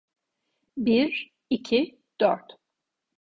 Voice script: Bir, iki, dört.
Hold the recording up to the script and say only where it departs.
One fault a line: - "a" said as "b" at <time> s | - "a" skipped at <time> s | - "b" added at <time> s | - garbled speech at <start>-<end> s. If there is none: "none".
none